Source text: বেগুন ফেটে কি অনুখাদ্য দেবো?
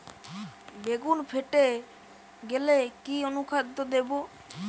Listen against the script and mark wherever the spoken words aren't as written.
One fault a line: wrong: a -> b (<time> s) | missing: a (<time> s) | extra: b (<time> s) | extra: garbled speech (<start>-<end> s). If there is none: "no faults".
extra: গেলে (2.4 s)